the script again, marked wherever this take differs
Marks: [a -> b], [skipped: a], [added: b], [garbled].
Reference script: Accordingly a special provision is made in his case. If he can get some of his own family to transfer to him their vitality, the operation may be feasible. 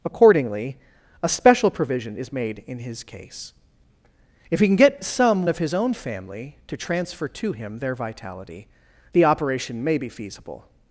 Accordingly a special provision is made in his case. If he can get some of his own family to transfer to him their vitality, the operation may be feasible.